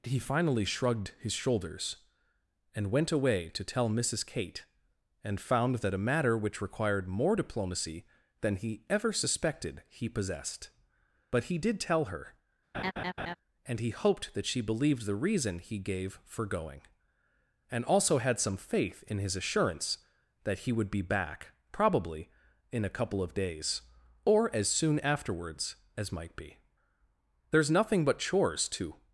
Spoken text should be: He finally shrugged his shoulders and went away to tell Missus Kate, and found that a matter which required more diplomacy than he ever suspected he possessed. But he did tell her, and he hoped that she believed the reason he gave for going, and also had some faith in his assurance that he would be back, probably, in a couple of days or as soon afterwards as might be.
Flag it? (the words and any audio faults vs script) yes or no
yes